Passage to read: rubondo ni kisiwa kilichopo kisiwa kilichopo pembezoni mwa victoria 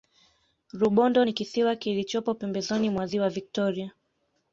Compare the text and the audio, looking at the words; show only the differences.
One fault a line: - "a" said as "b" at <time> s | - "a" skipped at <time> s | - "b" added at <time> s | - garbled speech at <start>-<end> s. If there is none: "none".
- "kisiwa kilichopo" skipped at 2.3 s
- "ziwa" added at 3.0 s